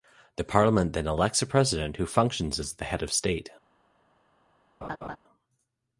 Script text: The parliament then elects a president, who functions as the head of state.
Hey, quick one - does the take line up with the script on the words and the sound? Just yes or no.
no